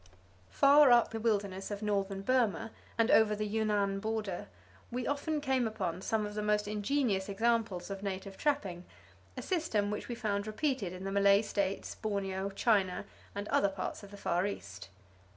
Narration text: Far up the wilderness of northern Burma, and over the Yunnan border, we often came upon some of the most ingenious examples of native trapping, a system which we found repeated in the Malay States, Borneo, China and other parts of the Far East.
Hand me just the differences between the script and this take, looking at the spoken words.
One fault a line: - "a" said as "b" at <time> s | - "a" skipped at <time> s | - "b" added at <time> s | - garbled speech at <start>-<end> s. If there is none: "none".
none